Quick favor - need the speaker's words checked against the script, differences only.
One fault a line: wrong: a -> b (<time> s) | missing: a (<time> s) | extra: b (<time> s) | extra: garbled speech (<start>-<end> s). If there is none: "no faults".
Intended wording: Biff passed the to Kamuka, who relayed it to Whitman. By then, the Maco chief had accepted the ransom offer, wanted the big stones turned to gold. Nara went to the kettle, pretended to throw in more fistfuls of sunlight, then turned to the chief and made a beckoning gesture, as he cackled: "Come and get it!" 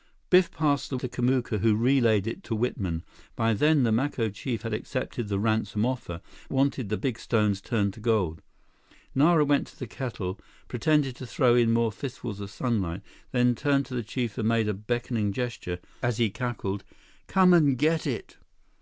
no faults